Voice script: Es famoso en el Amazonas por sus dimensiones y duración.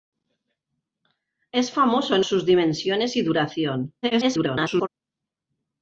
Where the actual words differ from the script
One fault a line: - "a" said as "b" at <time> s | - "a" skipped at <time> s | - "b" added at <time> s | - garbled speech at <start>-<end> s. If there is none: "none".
- "el Amazonas por" skipped at 2.2 s
- garbled speech at 4.0-4.9 s